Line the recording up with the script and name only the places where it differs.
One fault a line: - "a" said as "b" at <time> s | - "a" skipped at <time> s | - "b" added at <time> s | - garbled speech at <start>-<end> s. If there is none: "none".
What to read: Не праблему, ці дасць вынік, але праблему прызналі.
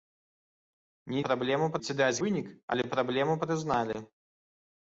none